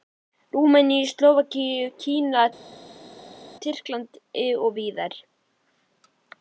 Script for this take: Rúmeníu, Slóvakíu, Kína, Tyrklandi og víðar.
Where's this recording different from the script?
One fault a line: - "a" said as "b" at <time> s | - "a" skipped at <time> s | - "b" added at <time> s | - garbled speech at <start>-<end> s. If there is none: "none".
none